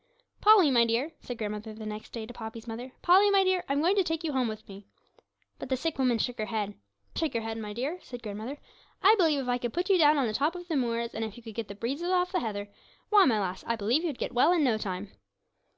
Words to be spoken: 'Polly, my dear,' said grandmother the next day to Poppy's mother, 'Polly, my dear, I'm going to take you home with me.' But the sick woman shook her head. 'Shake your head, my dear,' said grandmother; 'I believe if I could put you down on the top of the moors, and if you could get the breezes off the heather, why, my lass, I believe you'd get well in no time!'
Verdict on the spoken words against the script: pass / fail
pass